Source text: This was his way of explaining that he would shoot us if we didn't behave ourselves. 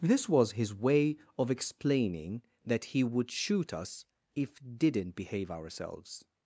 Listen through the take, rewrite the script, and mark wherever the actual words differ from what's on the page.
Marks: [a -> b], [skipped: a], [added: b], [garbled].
This was his way of explaining that he would shoot us if [skipped: we] didn't behave ourselves.